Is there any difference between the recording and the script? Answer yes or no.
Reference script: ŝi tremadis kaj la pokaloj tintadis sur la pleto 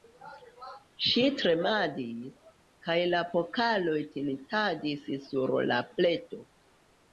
no